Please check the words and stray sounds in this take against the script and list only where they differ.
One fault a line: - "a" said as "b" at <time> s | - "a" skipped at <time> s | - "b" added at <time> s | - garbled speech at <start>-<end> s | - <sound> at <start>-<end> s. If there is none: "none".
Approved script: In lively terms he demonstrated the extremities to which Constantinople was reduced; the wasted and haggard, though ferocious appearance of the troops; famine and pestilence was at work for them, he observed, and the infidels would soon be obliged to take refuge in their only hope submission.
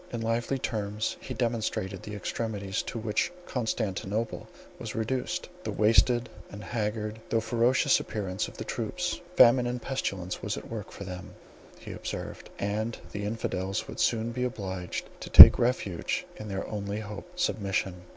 none